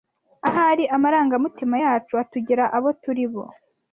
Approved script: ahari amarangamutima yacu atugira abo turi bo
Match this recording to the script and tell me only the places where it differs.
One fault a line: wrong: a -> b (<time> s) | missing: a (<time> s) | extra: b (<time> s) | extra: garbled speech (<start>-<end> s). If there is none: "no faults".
no faults